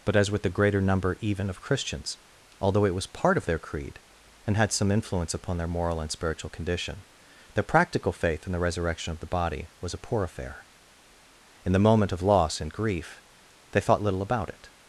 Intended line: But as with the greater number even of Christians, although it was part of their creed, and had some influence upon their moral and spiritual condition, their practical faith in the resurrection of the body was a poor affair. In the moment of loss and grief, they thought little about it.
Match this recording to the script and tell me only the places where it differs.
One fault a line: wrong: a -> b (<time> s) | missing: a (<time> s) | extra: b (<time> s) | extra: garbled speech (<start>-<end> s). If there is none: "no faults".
no faults